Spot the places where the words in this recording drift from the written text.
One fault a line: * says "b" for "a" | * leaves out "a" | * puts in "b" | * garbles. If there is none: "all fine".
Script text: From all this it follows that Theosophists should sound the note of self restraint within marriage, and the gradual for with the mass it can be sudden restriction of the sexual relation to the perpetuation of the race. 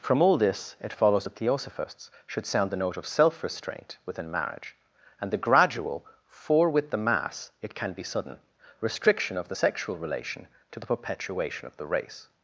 all fine